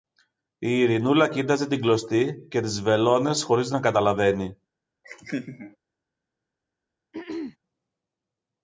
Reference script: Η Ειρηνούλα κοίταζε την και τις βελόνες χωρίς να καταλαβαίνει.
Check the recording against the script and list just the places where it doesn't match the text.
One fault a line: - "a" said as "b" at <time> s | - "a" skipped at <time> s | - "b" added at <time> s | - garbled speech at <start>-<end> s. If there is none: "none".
- "κλωστή" added at 1.8 s